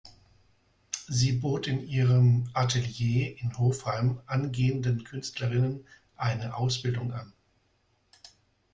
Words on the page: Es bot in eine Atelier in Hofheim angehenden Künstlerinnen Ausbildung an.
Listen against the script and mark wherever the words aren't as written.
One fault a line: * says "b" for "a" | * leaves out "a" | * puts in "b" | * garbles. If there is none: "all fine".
* says "Sie" for "Es"
* says "ihrem" for "eine"
* puts in "eine"